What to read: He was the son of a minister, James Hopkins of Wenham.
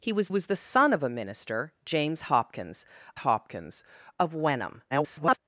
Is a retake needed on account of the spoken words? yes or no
yes